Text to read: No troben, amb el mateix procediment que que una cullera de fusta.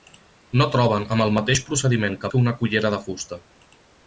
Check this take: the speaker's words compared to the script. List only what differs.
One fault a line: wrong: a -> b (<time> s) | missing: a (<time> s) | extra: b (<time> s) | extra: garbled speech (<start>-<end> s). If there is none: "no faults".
no faults